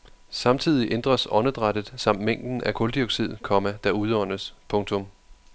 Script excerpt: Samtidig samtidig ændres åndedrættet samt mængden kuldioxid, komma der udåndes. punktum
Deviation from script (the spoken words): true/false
true